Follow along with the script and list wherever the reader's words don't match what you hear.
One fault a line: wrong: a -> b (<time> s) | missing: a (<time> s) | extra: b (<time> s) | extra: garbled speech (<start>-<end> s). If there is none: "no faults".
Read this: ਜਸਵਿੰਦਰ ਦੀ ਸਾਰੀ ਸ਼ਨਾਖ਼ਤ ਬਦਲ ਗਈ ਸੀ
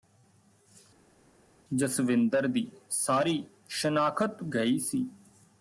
missing: ਬਦਲ (4.4 s)